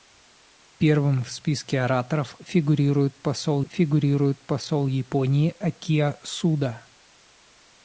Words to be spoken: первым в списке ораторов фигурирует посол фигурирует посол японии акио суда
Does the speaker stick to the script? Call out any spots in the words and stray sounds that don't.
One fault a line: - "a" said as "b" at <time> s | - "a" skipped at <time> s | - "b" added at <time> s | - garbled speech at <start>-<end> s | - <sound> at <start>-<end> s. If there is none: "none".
none